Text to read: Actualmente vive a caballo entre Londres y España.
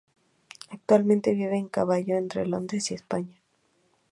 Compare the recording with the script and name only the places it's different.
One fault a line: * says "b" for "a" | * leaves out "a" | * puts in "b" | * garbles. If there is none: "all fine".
all fine